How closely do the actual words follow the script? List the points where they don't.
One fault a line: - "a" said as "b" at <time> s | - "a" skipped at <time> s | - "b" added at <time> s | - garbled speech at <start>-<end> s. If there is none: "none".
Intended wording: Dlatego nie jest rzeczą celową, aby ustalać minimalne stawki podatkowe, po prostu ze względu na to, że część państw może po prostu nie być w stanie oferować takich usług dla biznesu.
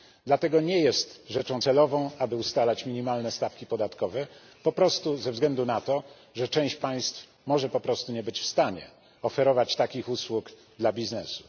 none